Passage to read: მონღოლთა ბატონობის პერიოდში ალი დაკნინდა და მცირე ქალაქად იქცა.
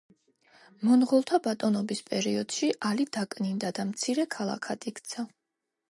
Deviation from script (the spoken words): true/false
false